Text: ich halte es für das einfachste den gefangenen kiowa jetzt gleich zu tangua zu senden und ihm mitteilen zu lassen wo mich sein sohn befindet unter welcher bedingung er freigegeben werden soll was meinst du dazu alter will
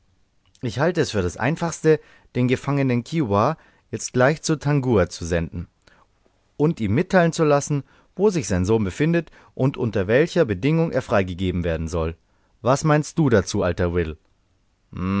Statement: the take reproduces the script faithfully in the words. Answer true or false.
false